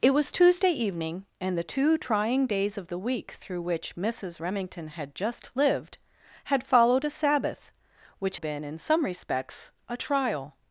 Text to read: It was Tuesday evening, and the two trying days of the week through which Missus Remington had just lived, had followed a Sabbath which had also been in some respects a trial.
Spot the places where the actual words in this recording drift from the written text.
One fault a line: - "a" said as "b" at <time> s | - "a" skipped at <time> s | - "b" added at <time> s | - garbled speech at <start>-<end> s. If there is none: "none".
- "had also" skipped at 8.4 s